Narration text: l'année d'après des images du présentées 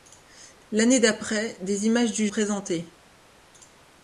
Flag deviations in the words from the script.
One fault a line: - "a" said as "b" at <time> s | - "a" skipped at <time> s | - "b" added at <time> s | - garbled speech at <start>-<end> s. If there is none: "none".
none